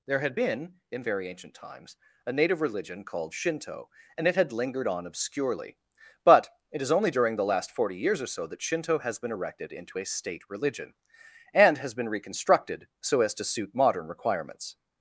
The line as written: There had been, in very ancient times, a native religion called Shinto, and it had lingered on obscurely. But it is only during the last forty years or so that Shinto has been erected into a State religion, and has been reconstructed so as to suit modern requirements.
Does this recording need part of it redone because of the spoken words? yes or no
no